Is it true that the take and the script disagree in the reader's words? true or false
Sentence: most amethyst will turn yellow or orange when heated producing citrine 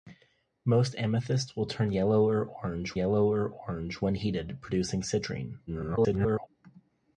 true